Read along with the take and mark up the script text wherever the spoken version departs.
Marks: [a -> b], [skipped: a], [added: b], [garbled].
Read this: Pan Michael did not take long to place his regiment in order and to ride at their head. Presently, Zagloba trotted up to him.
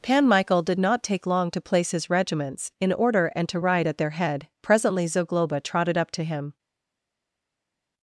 Pan Michael did not take long to place his [regiment -> regiments] in order and to ride at their head. Presently, Zagloba trotted up to him.